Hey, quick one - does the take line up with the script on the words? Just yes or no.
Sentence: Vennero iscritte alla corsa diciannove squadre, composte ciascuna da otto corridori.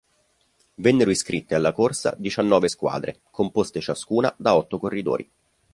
yes